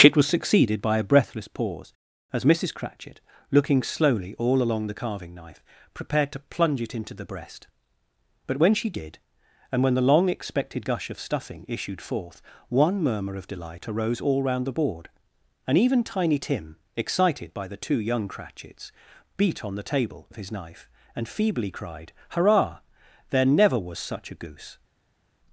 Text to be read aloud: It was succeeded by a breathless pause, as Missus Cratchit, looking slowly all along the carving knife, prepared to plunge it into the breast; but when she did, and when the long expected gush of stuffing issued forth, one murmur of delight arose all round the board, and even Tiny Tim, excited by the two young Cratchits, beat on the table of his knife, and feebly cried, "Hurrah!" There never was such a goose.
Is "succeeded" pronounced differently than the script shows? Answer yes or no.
no